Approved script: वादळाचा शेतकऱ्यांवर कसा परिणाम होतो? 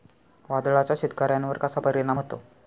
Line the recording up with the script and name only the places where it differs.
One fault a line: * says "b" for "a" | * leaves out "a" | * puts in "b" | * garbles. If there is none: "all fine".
all fine